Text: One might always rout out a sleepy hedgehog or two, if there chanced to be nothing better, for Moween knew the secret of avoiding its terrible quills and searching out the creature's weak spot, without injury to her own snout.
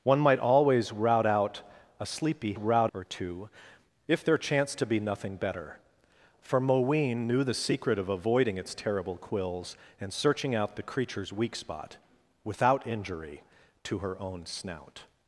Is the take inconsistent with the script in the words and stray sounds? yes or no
yes